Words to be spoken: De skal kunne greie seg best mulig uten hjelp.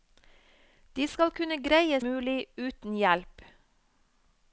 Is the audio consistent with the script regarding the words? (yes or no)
no